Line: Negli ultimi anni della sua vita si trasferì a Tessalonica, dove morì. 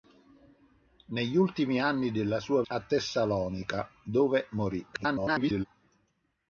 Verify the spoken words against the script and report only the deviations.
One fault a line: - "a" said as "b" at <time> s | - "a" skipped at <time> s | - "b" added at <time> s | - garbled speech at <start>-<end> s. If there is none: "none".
- "vita si trasferì" skipped at 2.6 s
- garbled speech at 4.9-5.7 s